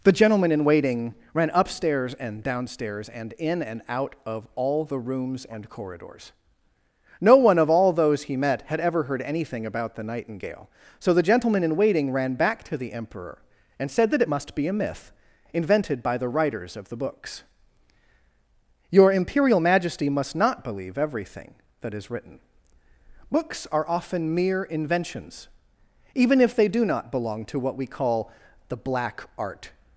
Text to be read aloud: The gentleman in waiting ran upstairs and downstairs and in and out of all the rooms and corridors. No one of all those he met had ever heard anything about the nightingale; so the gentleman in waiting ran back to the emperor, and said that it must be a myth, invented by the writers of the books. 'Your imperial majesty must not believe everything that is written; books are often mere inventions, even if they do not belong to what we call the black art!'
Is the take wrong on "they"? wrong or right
right